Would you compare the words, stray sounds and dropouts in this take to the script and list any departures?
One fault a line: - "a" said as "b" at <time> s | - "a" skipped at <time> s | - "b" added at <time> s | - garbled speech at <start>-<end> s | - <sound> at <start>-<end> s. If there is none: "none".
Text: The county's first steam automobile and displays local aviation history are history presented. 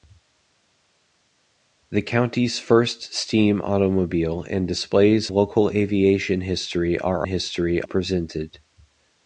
none